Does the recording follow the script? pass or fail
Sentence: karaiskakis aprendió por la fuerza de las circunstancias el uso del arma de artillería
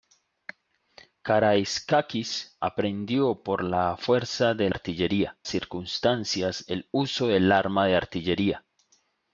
fail